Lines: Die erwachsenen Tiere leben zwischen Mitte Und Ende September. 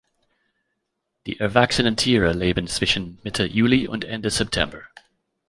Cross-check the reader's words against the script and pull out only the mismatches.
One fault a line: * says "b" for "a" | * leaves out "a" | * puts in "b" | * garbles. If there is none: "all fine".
* puts in "Juli"